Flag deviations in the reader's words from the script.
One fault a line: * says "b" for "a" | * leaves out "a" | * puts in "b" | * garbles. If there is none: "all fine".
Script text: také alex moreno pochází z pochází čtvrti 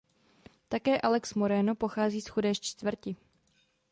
* says "chudé" for "pochází"